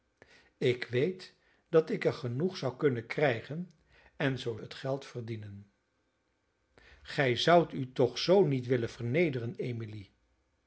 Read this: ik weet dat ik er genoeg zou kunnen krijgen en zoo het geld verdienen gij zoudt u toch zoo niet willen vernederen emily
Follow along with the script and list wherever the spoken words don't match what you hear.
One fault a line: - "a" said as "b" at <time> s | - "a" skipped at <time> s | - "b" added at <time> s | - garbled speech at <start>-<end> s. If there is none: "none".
none